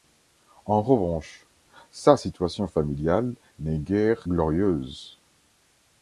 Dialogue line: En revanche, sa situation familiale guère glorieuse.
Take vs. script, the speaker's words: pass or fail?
fail